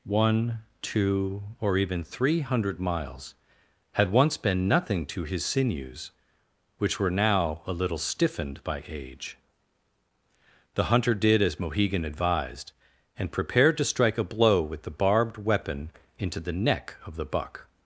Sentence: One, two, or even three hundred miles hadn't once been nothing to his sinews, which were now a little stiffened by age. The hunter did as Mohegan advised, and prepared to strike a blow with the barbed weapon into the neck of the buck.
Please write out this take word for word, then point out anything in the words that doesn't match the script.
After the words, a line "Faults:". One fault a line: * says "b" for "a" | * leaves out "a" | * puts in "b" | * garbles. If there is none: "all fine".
One, two, or even three hundred miles had once been nothing to his sinews, which were now a little stiffened by age. The hunter did as Mohegan advised, and prepared to strike a blow with the barbed weapon into the neck of the buck.
Faults:
* says "had" for "hadn't"